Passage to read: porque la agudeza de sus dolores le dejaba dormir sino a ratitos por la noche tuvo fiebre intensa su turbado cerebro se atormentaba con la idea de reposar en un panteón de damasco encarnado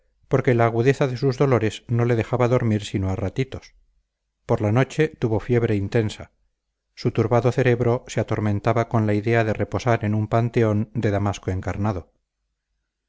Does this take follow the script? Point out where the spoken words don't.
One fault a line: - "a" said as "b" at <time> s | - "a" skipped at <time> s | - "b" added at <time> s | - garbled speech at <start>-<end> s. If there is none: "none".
- "no" added at 1.9 s